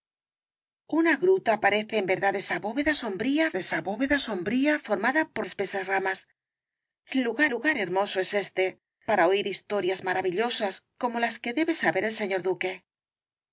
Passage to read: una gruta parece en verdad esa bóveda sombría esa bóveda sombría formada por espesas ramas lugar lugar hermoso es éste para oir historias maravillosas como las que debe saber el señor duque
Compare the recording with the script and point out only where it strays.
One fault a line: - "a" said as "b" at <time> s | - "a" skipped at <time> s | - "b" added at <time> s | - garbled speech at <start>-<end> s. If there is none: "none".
none